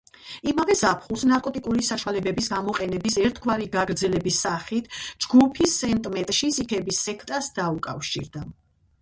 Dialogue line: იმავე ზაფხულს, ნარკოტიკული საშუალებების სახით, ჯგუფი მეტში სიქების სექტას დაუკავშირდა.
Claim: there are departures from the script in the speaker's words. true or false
true